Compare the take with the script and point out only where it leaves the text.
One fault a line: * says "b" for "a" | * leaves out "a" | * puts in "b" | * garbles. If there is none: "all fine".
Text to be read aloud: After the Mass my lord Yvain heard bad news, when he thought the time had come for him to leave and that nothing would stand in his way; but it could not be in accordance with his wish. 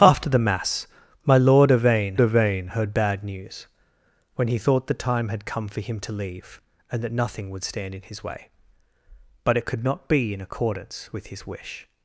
* puts in "Yvain"